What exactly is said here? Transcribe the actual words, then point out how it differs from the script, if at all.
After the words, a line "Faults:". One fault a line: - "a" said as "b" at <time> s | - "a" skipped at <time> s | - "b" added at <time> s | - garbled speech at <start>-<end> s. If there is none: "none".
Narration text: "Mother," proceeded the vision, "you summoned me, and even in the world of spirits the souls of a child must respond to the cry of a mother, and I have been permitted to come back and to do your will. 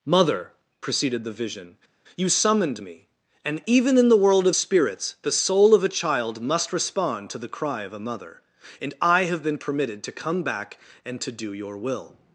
"Mother," proceeded the vision, "you summoned me, and even in the world of spirits the soul of a child must respond to the cry of a mother, and I have been permitted to come back and to do your will.
Faults:
- "souls" said as "soul" at 5.3 s